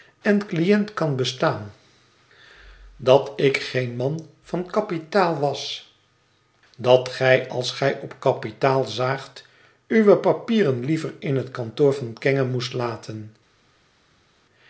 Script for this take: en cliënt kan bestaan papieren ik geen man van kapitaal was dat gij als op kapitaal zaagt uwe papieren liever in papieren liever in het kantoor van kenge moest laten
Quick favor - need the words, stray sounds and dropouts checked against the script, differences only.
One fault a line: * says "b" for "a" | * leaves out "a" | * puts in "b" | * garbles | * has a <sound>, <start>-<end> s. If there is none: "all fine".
* says "dat" for "papieren"
* puts in "gij"
* leaves out "papieren liever in"